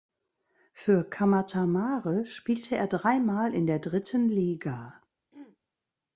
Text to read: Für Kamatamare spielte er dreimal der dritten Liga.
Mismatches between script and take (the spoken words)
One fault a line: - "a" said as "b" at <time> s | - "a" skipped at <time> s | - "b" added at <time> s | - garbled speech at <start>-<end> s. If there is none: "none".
- "in" added at 3.5 s